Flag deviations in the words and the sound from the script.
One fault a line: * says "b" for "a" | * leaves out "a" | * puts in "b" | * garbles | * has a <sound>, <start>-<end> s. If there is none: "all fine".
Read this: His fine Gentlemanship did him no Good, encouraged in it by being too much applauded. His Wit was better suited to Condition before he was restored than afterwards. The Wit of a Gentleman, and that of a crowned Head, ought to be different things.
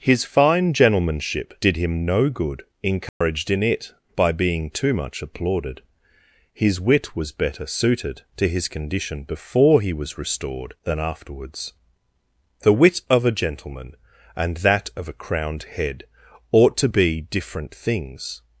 * has a dropout, 3.1-3.2 s
* puts in "his"